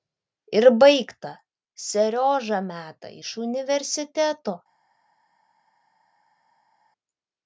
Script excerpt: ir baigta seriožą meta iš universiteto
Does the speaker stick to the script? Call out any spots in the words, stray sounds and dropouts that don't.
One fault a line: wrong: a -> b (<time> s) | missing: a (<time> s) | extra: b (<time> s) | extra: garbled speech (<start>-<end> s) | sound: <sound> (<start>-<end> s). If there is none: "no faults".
no faults